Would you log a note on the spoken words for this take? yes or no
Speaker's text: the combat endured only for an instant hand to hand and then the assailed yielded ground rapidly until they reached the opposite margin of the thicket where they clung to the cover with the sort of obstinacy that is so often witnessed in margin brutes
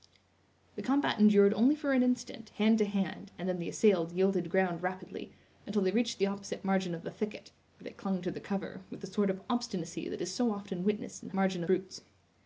no